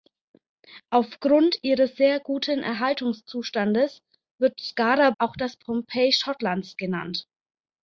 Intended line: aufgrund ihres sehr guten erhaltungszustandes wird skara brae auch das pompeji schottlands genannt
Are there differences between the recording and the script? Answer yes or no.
yes